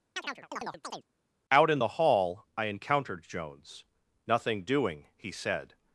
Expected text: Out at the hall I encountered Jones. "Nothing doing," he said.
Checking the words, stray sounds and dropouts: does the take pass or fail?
fail